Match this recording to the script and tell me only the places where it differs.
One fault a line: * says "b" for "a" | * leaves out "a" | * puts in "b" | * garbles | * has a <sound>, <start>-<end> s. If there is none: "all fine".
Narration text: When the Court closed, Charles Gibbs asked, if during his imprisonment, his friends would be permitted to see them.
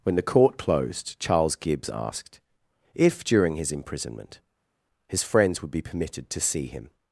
* says "him" for "them"